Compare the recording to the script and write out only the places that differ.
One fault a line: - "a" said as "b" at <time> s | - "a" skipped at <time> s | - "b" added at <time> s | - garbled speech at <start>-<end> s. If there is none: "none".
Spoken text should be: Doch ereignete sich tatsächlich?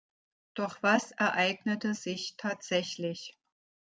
- "was" added at 0.8 s